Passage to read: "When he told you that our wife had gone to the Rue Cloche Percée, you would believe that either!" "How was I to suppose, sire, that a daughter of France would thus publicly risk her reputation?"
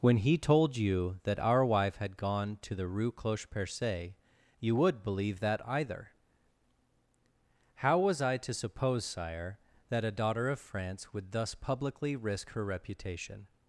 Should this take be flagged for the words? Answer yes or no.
no